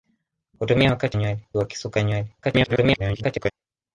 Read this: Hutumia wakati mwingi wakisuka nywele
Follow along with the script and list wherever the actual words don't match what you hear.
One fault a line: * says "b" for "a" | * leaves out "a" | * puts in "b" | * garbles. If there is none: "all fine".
* says "nywele" for "mwingi"
* garbles